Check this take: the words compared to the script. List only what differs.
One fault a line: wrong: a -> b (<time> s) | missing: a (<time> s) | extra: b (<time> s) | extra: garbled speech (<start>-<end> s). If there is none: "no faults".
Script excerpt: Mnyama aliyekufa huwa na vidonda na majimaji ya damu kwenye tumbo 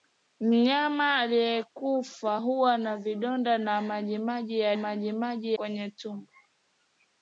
wrong: damu -> majimaji (4.8 s)